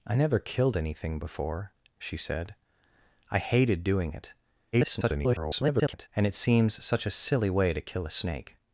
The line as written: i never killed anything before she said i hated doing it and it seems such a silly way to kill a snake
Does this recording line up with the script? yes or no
no